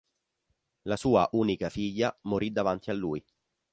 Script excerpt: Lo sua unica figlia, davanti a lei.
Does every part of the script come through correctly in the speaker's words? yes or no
no